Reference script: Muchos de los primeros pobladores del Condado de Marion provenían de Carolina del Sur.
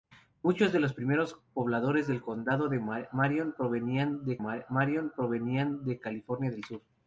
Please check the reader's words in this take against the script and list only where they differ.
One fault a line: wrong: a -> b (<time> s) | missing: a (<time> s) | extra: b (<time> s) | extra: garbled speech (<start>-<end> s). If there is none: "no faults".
extra: Marion provenían de (4.4 s)